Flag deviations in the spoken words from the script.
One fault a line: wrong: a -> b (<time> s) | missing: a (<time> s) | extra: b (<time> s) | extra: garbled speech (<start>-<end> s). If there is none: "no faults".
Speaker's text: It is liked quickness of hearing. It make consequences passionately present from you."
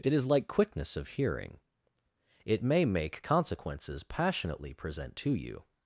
wrong: liked -> like (0.2 s)
extra: may (2.6 s)
wrong: from -> to (5.2 s)